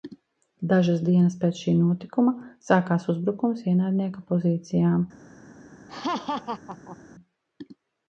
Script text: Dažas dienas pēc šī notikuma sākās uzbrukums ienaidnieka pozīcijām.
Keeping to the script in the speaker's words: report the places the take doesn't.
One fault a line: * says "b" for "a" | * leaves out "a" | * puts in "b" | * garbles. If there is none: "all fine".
all fine